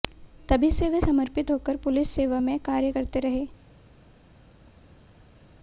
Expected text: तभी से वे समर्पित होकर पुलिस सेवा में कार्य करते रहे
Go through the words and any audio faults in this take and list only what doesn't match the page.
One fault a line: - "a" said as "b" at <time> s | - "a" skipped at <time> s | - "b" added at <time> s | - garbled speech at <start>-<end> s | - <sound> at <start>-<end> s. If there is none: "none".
none